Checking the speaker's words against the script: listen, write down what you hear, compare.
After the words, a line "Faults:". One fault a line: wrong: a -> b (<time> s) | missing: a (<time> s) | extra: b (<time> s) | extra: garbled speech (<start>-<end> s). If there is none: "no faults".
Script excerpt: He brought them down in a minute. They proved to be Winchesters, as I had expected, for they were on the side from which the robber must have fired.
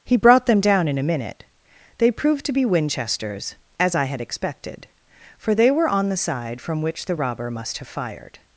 He brought them down in a minute. They proved to be Winchesters, as I had expected, for they were on the side from which the robber must have fired.
Faults:
no faults